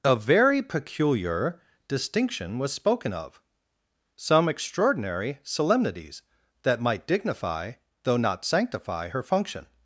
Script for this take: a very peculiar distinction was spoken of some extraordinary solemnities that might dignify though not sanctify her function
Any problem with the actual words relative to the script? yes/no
no